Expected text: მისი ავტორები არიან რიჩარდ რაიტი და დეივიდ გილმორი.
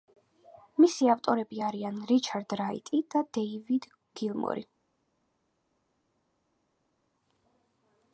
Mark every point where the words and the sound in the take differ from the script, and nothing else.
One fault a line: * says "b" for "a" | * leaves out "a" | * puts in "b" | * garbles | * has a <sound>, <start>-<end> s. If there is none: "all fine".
all fine